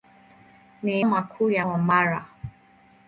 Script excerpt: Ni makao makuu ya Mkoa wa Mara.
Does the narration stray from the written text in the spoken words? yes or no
yes